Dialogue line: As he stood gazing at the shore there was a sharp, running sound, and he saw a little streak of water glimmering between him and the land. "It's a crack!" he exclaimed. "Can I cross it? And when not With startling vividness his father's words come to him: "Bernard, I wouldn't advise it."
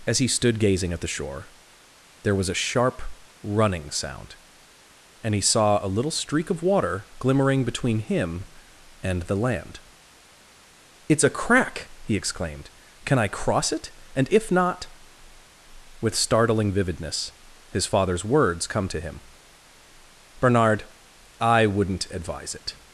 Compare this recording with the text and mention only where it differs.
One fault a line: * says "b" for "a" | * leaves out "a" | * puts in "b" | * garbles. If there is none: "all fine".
* says "if" for "when"